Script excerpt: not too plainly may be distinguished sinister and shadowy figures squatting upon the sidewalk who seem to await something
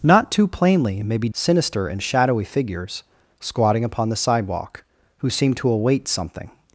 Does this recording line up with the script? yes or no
no